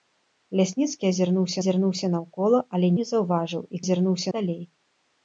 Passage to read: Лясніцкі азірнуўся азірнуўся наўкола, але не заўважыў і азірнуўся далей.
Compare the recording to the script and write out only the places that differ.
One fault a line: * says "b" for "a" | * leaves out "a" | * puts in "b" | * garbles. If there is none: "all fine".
all fine